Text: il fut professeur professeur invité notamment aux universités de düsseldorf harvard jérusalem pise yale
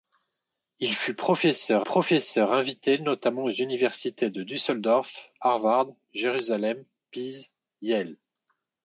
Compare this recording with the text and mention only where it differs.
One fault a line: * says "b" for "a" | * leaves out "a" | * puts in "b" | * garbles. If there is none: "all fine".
all fine